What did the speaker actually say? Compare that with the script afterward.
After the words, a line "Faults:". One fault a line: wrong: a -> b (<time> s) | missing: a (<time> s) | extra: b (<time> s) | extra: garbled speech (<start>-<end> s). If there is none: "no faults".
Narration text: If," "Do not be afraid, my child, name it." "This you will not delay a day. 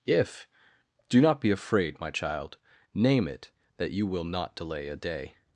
If," "Do not be afraid, my child, name it." "That you will not delay a day.
Faults:
wrong: This -> That (3.8 s)